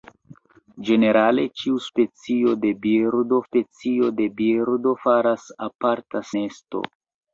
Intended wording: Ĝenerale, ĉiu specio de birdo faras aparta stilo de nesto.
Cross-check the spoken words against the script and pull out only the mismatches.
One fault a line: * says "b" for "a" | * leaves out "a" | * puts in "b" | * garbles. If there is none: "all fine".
* puts in "specio de birdo"
* leaves out "stilo de"